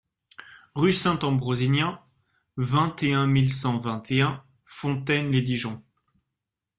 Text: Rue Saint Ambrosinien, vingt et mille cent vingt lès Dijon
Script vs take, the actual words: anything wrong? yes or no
yes